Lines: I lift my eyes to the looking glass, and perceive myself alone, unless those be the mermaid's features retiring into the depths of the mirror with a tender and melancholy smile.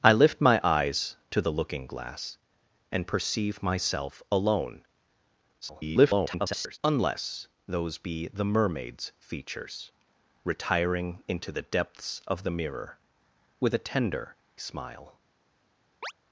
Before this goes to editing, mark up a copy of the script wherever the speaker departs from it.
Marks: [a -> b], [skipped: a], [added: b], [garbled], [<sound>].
I lift my eyes to the looking glass, and perceive myself alone, [garbled] unless those be the mermaid's features retiring into the depths of the mirror with a tender [skipped: and melancholy] smile. [chirp]